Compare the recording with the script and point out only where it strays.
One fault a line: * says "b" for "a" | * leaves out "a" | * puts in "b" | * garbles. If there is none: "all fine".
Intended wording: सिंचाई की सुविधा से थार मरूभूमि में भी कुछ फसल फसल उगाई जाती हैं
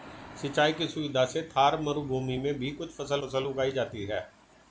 all fine